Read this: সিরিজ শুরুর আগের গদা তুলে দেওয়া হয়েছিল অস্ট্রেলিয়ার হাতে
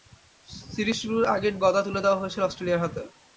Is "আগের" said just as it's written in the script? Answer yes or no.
yes